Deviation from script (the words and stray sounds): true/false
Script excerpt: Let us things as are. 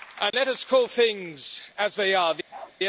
true